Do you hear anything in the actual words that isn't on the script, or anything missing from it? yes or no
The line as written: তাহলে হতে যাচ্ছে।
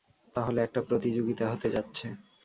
yes